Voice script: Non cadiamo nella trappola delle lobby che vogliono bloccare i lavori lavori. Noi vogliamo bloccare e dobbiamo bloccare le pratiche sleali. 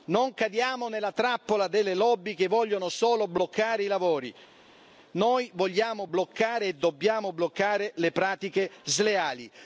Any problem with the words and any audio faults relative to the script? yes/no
yes